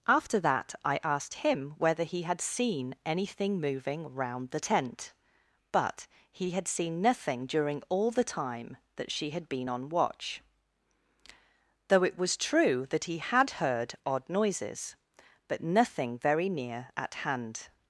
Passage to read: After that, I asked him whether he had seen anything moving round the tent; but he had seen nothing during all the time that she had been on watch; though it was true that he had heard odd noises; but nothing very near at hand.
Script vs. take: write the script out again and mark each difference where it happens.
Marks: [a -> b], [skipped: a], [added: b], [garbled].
After that, I asked him whether he had seen anything moving round the tent; but he had seen nothing during all the time that she had been on watch; though it was true that he had heard odd noises; but nothing very near at hand.